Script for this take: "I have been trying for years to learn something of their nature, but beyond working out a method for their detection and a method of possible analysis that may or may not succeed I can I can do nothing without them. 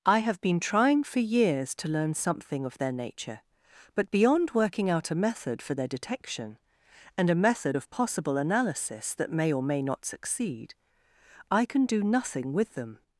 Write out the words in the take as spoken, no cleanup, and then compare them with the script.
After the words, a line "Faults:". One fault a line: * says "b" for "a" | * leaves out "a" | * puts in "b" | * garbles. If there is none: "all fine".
"I have been trying for years to learn something of their nature, but beyond working out a method for their detection and a method of possible analysis that may or may not succeed I can do nothing with them.
Faults:
* leaves out "I can"
* says "with" for "without"